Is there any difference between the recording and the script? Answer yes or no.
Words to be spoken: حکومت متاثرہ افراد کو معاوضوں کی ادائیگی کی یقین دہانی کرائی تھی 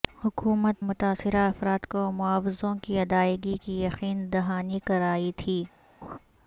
no